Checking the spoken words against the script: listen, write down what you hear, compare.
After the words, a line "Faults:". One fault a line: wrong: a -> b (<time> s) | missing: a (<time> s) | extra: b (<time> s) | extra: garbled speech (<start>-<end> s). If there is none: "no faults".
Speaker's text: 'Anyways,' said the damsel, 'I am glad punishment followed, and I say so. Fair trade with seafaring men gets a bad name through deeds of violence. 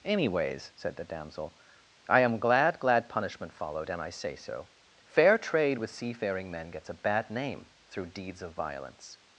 'Anyways,' said the damsel, 'I am glad glad punishment followed, and I say so. Fair trade with seafaring men gets a bad name through deeds of violence.
Faults:
extra: glad (2.8 s)